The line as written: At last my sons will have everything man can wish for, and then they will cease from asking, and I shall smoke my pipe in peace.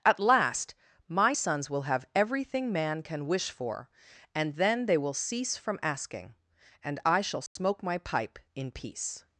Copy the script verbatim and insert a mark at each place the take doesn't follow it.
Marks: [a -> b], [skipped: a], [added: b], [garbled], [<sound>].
At last my sons will have everything man can wish for, and then they will cease from asking, and I shall smoke [dropout] my pipe in peace.